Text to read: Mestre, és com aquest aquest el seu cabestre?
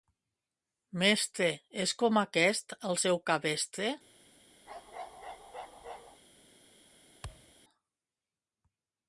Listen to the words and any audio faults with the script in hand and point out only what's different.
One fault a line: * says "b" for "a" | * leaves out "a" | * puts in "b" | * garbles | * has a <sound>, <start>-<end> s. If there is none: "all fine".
* leaves out "aquest"
* has a bark, 4.7-6.2 s
* has a thud, 7.2-7.5 s